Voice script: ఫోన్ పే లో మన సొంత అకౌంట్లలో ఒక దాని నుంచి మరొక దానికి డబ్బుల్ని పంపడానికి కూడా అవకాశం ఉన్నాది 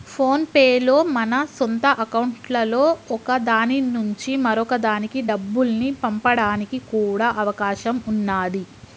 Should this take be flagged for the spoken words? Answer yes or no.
no